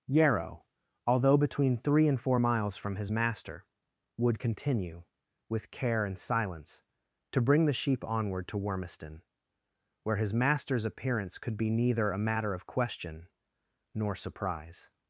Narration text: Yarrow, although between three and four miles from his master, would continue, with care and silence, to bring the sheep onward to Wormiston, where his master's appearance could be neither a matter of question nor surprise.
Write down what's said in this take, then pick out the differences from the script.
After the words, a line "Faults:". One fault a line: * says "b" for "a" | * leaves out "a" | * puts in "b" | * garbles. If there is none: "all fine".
Yarrow, although between three and four miles from his master, would continue, with care and silence, to bring the sheep onward to Wormiston, where his master's appearance could be neither a matter of question nor surprise.
Faults:
all fine